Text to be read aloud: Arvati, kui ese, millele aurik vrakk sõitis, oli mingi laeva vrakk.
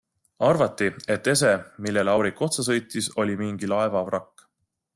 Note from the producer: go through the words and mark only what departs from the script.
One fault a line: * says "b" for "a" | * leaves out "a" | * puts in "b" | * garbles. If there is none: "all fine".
* says "et" for "kui"
* says "otsa" for "vrakk"